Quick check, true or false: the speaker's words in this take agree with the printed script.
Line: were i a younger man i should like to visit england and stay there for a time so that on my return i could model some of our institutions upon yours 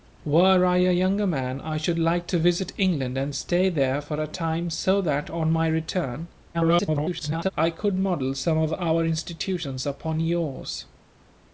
false